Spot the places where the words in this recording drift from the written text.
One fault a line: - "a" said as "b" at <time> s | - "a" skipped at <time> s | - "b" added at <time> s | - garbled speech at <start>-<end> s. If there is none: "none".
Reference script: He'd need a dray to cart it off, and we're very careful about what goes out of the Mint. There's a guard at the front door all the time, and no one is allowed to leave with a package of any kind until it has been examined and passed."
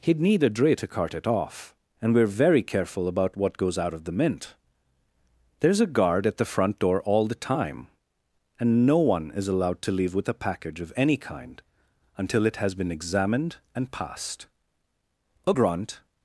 - "A grunt" added at 15.5 s